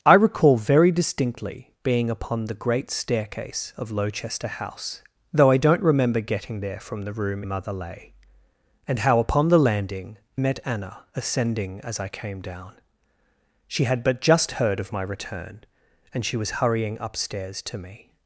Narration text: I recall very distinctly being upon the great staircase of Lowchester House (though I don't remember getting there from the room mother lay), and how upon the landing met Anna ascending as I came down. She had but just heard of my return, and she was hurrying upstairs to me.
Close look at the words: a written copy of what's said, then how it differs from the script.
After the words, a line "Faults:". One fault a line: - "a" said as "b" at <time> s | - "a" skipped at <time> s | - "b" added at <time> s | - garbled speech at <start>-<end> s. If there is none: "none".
I recall very distinctly being upon the great staircase of Lowchester House (though I don't remember getting there from the room mother lay), and how upon the landing met Anna ascending as I came down. She had but just heard of my return, and she was hurrying upstairs to me.
Faults:
none